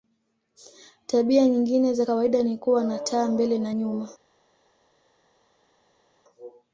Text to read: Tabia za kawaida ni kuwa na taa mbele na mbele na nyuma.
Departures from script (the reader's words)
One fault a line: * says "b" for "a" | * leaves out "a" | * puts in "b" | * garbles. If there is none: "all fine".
* puts in "nyingine"
* leaves out "mbele na"